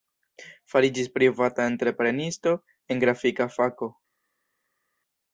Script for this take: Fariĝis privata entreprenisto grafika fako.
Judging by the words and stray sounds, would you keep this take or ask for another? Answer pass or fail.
fail